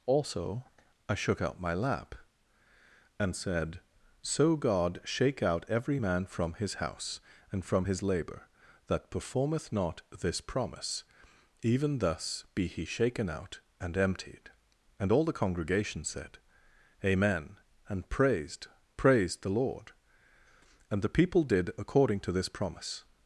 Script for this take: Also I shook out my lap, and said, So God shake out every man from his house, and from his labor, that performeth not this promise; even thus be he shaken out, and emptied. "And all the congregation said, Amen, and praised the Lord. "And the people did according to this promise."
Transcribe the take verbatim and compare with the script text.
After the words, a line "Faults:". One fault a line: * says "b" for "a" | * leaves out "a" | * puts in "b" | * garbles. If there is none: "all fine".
Also I shook out my lap, and said, So God shake out every man from his house, and from his labor, that performeth not this promise; even thus be he shaken out, and emptied. "And all the congregation said, Amen, and praised praised the Lord. "And the people did according to this promise."
Faults:
* puts in "praised"